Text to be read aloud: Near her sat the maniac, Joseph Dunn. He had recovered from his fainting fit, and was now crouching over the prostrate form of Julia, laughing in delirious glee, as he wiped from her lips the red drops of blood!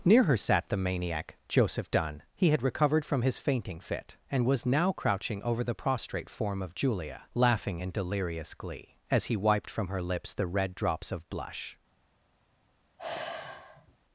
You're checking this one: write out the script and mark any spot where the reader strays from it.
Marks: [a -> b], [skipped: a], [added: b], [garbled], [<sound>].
Near her sat the maniac, Joseph Dunn. He had recovered from his fainting fit, and was now crouching over the prostrate form of Julia, laughing in delirious glee, as he wiped from her lips the red drops of [blood! -> blush] [sigh]